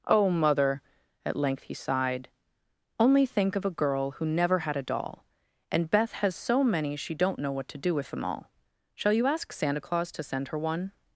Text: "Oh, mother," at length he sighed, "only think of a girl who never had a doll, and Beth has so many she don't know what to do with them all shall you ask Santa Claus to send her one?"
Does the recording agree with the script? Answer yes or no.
yes